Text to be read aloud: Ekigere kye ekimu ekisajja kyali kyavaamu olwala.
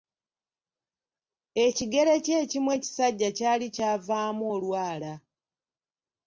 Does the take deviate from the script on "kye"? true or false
false